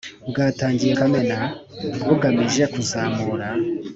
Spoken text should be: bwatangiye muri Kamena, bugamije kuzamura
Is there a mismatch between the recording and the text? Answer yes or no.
yes